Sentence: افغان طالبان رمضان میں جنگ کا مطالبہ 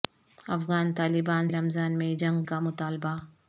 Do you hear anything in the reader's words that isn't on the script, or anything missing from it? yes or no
no